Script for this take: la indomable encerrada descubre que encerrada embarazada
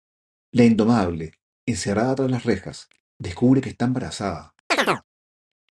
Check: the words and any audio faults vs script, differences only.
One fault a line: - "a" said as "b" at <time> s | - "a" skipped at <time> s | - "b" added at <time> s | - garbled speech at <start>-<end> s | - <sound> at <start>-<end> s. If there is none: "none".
- "tras las rejas" added at 2.1 s
- "encerrada" said as "está" at 3.7 s
- chirp at 4.7-5.0 s